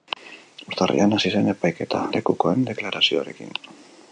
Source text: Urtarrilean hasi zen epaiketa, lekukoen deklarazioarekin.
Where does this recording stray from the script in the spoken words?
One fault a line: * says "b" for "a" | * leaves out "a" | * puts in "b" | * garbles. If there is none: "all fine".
all fine